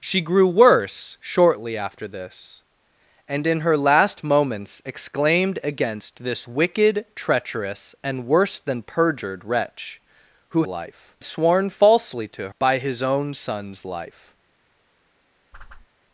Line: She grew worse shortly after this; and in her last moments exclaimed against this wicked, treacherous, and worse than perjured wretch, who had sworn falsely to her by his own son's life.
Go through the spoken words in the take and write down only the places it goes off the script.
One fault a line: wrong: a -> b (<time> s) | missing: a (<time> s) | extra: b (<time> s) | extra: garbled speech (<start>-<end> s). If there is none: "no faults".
wrong: had -> life (10.7 s)
missing: her (12.5 s)